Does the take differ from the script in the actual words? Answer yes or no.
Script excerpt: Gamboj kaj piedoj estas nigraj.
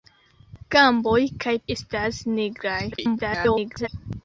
yes